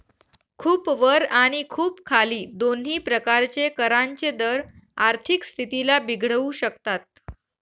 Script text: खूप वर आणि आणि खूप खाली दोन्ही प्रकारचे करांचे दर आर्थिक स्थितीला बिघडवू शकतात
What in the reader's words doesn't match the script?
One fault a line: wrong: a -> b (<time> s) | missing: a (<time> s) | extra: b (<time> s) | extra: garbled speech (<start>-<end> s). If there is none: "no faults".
missing: आणि (1.6 s)